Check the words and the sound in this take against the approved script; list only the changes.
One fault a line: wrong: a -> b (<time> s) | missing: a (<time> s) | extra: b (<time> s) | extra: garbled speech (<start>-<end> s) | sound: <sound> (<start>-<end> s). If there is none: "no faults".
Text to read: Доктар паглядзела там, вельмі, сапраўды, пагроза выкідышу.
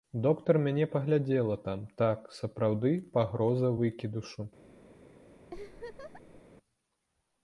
extra: мяне (0.7 s)
wrong: вельмі -> так (2.0 s)
sound: laugh (5.5-6.4 s)